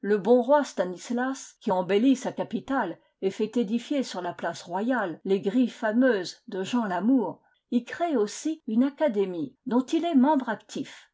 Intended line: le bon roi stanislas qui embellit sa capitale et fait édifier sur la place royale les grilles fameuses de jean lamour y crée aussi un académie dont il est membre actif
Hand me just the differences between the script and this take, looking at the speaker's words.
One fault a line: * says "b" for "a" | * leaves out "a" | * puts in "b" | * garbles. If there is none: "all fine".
* says "une" for "un"